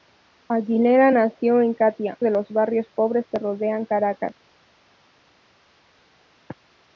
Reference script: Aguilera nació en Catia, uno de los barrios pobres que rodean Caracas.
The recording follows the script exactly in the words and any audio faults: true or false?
false